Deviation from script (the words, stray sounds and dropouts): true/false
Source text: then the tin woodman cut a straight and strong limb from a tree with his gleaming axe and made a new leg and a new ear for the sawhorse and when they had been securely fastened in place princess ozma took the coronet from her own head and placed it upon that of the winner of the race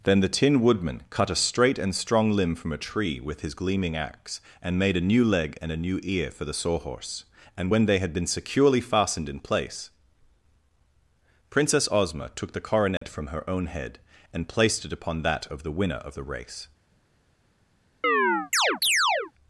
true